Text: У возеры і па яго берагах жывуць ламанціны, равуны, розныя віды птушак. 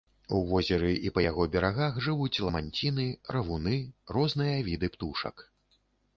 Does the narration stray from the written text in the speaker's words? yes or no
no